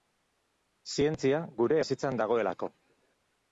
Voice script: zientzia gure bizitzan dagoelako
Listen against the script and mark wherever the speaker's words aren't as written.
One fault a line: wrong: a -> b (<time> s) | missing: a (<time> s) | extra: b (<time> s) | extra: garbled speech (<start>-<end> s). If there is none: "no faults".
no faults